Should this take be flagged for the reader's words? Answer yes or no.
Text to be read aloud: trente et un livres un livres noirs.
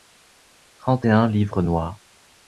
yes